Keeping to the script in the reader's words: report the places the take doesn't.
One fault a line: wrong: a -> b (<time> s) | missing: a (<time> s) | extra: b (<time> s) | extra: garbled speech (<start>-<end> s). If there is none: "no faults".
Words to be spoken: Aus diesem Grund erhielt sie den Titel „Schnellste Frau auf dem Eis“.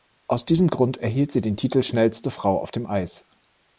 no faults